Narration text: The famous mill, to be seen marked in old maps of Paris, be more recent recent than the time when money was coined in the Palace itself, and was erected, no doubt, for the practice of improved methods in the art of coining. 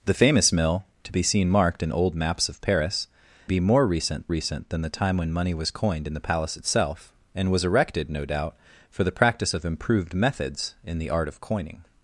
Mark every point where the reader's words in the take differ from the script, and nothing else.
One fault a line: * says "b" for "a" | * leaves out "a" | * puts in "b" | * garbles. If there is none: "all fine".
all fine